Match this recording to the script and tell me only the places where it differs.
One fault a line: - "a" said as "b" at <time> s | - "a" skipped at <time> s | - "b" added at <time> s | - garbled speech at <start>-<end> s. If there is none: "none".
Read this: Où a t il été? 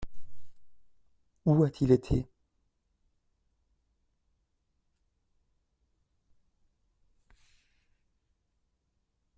none